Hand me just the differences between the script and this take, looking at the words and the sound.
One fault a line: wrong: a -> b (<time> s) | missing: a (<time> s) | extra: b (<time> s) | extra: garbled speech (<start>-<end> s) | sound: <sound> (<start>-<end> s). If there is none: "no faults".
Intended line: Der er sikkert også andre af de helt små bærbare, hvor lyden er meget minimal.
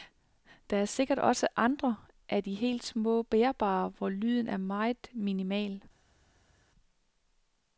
no faults